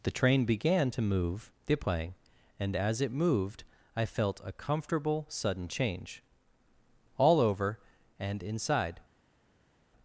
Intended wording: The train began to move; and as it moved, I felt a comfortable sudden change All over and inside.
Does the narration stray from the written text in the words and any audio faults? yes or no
yes